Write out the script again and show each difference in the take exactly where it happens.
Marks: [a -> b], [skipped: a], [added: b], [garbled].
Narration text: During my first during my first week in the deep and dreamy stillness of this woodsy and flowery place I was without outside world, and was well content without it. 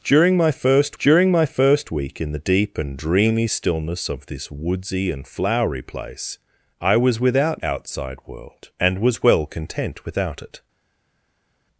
During my first during my first week in the deep and dreamy stillness of this woodsy and flowery place I was without outside world, and was well content without it.